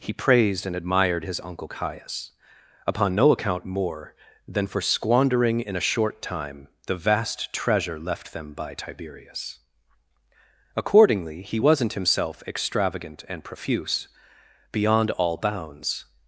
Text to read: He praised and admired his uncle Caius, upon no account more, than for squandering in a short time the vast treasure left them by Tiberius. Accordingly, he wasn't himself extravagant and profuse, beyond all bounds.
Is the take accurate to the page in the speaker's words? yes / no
yes